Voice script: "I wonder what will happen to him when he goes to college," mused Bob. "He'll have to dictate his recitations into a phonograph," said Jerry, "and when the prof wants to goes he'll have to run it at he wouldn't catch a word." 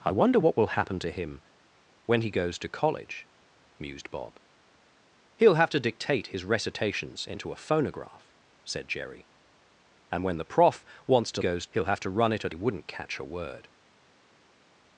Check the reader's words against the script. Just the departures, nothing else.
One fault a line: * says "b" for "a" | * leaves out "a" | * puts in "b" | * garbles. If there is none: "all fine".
all fine